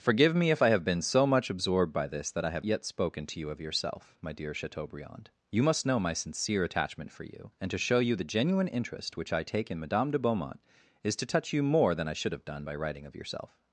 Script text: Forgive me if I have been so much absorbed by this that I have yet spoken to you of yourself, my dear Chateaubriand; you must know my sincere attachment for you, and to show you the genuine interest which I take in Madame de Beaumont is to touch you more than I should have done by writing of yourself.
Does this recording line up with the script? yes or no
yes